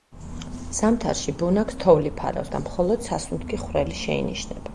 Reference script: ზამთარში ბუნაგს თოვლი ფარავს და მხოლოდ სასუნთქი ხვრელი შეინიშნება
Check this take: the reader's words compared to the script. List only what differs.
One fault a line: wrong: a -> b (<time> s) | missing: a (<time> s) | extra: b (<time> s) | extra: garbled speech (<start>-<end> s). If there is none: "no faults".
no faults